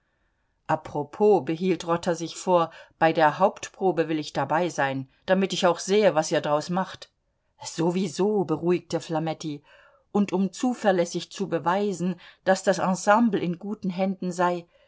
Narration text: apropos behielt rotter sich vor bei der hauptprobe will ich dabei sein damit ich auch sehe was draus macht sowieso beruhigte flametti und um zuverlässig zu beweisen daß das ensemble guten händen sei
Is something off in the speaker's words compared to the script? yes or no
yes